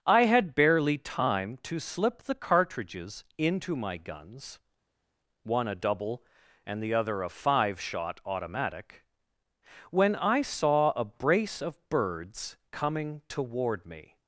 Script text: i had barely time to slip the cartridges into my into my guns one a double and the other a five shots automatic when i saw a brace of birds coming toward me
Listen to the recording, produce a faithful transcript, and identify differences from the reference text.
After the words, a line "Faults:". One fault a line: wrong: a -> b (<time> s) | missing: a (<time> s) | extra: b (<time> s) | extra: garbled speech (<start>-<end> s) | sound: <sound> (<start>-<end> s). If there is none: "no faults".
i had barely time to slip the cartridges into my guns one a double and the other a five shot automatic when i saw a brace of birds coming toward me
Faults:
missing: into my (4.0 s)
wrong: shots -> shot (7.8 s)